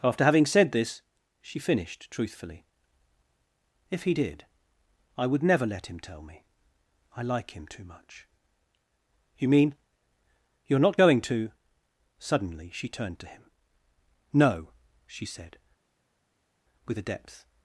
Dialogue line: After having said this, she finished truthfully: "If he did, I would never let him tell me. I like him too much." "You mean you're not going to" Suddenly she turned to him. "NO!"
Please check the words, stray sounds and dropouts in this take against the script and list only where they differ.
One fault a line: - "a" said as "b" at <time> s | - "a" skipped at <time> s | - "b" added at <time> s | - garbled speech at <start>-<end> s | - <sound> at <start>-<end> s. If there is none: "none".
- "she said with a depth" added at 15.1 s